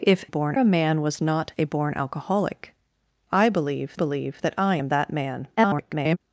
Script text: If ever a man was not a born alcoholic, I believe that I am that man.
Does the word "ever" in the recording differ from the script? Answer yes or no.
yes